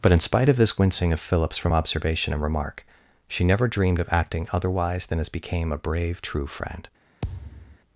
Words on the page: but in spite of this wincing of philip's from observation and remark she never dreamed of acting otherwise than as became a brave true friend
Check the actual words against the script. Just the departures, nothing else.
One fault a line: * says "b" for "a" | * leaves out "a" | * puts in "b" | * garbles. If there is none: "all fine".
all fine